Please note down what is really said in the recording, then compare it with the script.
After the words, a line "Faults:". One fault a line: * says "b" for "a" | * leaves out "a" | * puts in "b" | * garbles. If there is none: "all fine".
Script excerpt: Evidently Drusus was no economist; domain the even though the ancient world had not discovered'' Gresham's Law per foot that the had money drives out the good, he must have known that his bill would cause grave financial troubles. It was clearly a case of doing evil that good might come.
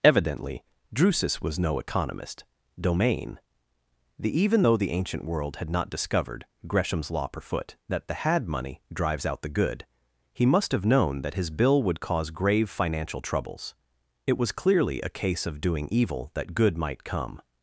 Evidently Drusus was no economist; domain the even though the ancient world had not discovered'' Gresham's Law per foot that the had money drives out the good, he must have known that his bill would cause grave financial troubles. It was clearly a case of doing evil that good might come.
Faults:
all fine